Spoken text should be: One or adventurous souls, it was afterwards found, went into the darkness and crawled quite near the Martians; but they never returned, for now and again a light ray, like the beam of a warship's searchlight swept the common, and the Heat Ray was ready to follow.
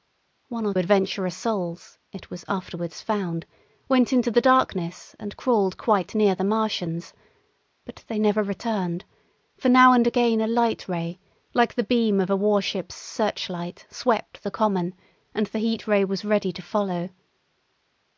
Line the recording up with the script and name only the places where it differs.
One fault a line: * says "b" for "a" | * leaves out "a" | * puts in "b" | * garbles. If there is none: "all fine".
all fine